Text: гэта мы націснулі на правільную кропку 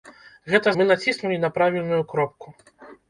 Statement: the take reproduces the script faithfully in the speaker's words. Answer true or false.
true